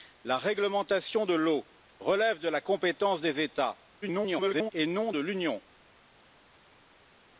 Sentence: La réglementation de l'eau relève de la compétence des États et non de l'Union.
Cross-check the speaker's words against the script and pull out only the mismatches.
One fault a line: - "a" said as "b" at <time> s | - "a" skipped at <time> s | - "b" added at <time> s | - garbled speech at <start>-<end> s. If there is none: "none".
- garbled speech at 4.0-4.7 s